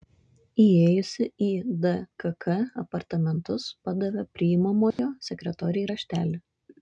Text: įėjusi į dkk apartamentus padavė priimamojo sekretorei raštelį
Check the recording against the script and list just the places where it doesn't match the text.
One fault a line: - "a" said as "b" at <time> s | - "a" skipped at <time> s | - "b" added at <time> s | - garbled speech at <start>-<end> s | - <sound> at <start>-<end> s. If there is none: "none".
- dropout at 4.9-5.0 s